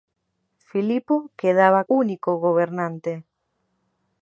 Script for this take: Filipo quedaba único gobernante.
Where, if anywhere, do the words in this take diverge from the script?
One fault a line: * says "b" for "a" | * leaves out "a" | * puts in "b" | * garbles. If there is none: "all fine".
all fine